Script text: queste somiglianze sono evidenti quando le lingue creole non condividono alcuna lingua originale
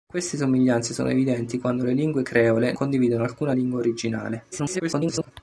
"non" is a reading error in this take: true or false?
true